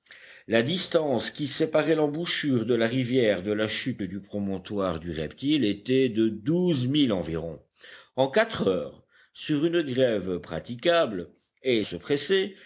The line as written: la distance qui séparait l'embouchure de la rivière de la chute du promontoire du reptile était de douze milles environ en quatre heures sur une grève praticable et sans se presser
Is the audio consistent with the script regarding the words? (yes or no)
no